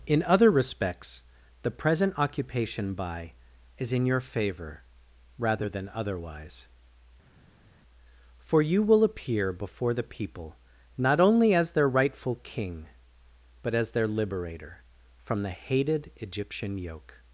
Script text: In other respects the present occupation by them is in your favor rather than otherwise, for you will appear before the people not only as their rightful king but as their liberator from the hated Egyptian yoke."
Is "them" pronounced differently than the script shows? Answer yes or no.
yes